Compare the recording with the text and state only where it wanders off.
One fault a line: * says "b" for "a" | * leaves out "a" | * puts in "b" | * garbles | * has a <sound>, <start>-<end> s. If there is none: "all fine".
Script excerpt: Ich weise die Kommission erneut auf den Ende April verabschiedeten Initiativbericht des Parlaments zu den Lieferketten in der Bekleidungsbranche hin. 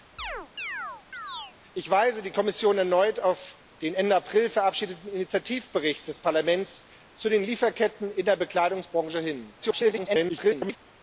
* has a chirp, 0.2-1.5 s
* garbles